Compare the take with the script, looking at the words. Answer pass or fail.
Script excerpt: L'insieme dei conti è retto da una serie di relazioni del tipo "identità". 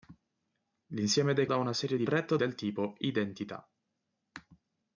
fail